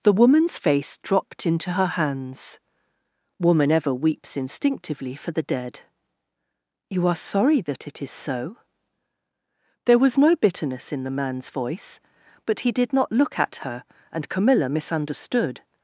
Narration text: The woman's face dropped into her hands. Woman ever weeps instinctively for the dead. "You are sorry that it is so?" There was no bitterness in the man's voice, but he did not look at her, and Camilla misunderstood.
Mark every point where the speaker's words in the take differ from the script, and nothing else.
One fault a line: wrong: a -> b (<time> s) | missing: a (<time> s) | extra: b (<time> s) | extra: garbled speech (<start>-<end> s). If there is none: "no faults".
no faults